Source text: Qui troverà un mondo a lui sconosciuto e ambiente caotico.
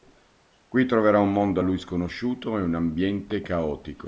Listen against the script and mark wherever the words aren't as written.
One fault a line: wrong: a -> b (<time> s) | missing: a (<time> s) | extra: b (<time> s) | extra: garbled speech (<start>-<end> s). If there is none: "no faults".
extra: un (2.6 s)